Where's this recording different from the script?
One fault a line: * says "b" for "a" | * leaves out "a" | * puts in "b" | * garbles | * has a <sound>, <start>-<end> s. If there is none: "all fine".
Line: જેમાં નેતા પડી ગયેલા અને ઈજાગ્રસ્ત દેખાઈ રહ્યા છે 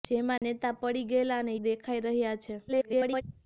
* has a dropout, 0.4-0.4 s
* leaves out "ઈજાગ્રસ્ત"
* garbles